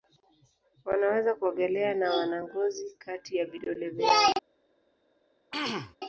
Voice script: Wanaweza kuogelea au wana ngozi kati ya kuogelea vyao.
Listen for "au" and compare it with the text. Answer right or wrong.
wrong